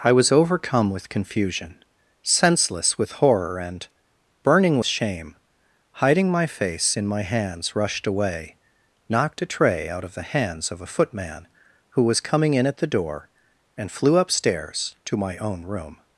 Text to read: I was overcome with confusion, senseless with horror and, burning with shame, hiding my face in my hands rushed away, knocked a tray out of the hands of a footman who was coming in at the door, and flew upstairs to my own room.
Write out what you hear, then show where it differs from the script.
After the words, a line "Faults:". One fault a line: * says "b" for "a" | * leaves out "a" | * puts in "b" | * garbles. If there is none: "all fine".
I was overcome with confusion, senseless with horror and, burning shame, hiding my face in my hands rushed away, knocked a tray out of the hands of a footman who was coming in at the door, and flew upstairs to my own room.
Faults:
* leaves out "with"